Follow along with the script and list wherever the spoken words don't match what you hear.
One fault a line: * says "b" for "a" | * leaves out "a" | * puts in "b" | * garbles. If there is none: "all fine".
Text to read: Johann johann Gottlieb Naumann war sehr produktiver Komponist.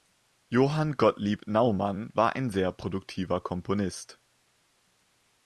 * leaves out "johann"
* puts in "ein"